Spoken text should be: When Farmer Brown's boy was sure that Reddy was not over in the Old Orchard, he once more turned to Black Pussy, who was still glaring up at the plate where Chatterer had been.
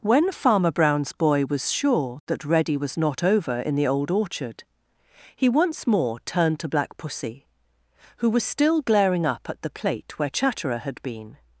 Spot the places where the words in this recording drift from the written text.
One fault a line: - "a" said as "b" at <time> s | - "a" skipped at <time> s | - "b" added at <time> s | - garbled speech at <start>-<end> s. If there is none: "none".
none